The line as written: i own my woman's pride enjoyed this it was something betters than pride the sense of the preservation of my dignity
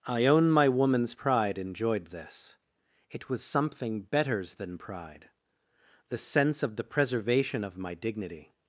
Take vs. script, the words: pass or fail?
pass